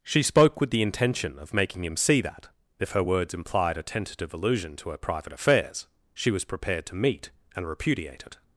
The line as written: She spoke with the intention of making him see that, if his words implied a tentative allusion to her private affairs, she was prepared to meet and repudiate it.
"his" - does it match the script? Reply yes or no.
no